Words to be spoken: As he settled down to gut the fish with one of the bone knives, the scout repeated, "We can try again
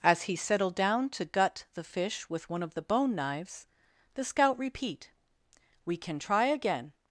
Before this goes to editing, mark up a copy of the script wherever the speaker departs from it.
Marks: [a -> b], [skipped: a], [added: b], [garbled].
As he settled down to gut the fish with one of the bone knives, the scout [repeated, -> repeat] "We can try again